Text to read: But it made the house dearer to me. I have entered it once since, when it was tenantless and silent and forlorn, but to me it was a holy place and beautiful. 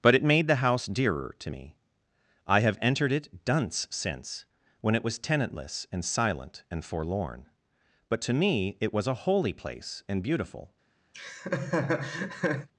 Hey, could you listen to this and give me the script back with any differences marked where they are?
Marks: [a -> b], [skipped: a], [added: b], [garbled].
But it made the house dearer to me. I have entered it [once -> dunce] since, when it was tenantless and silent and forlorn, but to me it was a holy place and beautiful.